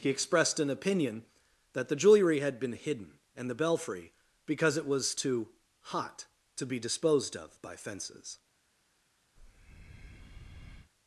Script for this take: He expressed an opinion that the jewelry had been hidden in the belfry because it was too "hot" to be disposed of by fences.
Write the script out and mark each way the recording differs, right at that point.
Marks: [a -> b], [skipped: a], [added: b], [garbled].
He expressed an opinion that the jewelry had been hidden [in -> and] the belfry because it was too "hot" to be disposed of by fences.